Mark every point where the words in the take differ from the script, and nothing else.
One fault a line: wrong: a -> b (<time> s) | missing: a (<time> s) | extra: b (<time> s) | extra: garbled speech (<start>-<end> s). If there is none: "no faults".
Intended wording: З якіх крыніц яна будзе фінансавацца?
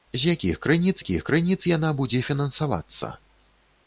extra: якіх крыніц (1.0 s)